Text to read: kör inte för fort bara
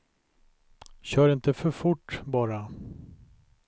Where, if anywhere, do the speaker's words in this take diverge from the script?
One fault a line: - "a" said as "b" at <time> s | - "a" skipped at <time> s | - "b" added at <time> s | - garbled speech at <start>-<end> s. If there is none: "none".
none